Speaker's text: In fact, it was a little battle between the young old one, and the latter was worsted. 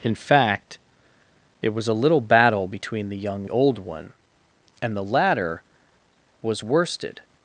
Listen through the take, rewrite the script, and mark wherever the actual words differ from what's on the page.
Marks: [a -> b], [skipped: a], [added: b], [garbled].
In fact, it was a little battle between the young old one, and the latter was worsted.